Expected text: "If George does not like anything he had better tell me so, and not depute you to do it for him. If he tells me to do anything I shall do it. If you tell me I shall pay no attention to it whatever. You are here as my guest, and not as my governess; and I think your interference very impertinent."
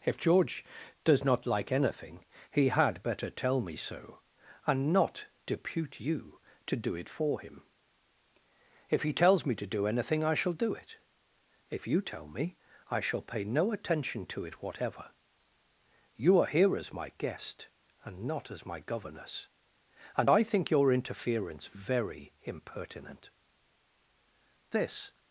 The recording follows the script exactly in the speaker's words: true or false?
false